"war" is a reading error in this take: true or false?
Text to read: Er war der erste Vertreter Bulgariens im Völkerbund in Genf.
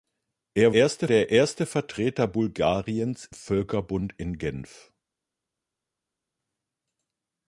true